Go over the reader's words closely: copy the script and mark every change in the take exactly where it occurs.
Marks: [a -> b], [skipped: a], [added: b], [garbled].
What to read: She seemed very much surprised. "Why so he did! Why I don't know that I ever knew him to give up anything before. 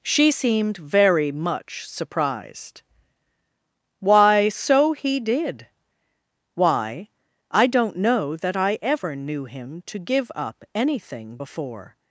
She seemed very much surprised. "Why so he did! Why I don't know that I ever knew him to give up anything before.